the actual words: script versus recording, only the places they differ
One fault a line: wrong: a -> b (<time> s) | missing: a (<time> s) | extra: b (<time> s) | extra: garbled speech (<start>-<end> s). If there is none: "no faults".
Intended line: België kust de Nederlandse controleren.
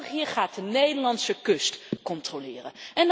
wrong: kust -> gaat (0.2 s)
extra: kust (1.4 s)